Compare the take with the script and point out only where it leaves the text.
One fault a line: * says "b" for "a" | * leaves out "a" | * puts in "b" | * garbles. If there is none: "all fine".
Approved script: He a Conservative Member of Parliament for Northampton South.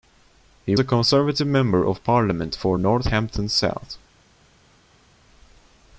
all fine